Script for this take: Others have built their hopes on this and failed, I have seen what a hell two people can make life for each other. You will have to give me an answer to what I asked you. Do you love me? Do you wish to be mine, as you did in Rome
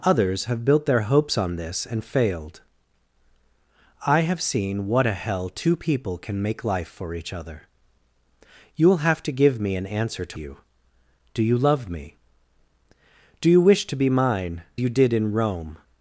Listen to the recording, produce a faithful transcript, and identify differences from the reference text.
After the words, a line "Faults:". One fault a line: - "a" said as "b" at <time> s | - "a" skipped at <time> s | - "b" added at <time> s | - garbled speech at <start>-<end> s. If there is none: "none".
Others have built their hopes on this and failed, I have seen what a hell two people can make life for each other. You will have to give me an answer to you. Do you love me? Do you wish to be mine, you did in Rome
Faults:
- "what I asked" skipped at 10.4 s
- "as" skipped at 14.6 s